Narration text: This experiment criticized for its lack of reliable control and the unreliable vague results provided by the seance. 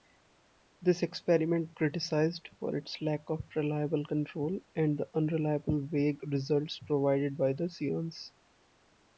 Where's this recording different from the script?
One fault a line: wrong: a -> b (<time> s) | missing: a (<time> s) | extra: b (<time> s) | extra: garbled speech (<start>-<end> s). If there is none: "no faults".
no faults